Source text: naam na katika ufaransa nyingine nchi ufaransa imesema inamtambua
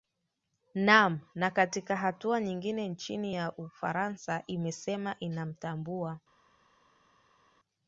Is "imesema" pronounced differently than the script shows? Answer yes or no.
no